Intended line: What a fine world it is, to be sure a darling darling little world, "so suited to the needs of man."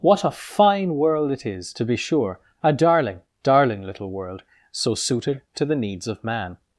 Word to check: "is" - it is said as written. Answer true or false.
true